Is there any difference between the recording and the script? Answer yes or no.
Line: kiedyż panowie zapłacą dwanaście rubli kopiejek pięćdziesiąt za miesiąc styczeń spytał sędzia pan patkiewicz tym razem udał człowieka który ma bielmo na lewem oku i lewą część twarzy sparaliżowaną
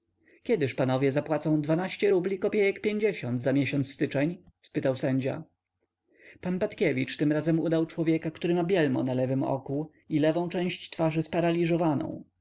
no